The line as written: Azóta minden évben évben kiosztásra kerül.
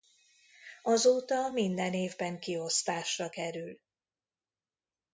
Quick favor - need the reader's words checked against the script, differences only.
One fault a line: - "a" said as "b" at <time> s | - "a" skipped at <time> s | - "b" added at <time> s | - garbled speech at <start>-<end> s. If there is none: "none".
- "évben" skipped at 2.4 s